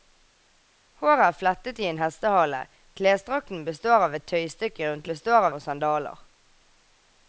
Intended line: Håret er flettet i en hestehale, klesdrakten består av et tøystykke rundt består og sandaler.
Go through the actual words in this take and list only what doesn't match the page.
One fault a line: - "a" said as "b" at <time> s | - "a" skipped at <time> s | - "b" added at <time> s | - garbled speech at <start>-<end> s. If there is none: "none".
none